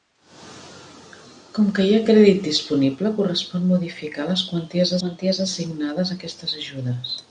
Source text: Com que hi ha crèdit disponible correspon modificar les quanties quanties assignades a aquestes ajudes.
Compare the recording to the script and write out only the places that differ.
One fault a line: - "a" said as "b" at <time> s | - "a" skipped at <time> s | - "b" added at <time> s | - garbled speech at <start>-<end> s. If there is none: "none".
none